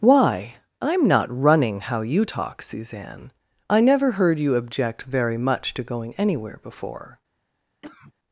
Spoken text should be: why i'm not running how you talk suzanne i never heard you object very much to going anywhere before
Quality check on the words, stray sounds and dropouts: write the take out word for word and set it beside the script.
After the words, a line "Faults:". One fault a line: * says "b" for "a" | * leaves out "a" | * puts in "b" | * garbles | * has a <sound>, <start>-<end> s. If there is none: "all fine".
why i'm not running how you talk suzanne i never heard you object very much to going anywhere before
Faults:
* has a cough, 7.8-8.1 s